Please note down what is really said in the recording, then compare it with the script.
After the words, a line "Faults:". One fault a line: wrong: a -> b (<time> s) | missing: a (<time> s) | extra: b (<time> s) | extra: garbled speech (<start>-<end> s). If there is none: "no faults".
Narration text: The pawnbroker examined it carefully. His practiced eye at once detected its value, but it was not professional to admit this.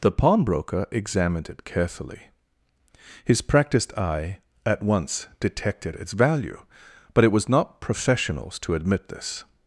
The pawnbroker examined it carefully. His practiced eye at once detected its value, but it was not professionals to admit this.
Faults:
wrong: professional -> professionals (7.8 s)